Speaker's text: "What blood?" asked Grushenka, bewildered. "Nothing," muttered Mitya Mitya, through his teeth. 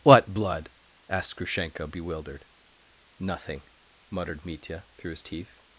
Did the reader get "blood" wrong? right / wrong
right